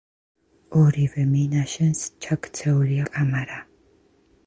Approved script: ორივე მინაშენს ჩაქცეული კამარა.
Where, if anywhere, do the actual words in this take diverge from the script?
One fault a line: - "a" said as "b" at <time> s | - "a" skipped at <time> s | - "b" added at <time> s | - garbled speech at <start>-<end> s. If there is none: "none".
none